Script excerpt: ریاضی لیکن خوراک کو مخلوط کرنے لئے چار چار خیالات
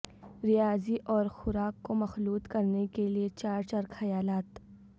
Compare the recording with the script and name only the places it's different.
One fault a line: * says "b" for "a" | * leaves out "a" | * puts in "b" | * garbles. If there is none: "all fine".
* says "اور" for "لیکن"
* puts in "کے"